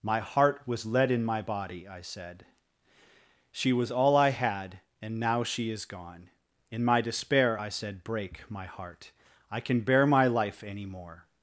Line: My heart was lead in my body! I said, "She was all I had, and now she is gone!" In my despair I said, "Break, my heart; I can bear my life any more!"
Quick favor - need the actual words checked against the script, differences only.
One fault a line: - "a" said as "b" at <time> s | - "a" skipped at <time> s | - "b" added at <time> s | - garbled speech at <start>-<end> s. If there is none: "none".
none